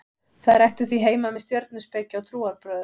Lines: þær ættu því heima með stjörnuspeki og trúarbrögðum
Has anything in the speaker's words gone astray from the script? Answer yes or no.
no